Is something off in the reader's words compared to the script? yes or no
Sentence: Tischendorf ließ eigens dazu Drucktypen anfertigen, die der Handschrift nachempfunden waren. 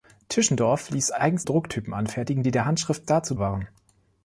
yes